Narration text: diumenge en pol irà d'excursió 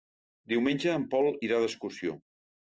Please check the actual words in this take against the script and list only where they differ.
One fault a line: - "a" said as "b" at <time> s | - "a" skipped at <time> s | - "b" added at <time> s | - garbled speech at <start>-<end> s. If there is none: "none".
none